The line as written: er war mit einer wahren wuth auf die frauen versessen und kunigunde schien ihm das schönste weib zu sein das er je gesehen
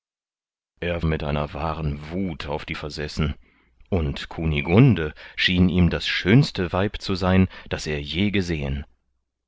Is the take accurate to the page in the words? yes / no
no